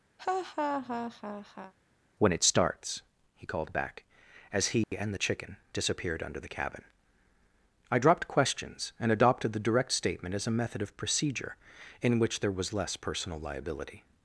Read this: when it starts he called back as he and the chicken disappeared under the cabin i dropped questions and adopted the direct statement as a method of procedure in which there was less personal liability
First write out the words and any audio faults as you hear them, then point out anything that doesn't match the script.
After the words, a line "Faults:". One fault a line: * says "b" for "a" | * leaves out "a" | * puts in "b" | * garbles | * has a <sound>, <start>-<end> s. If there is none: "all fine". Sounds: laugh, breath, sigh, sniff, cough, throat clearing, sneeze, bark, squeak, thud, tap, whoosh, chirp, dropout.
when it starts he called back as he and the chicken disappeared under the cabin i dropped questions and adopted the direct statement as a method of procedure in which there was less personal liability
Faults:
* has a laugh, 0.2-1.7 s
* has a dropout, 4.8-4.9 s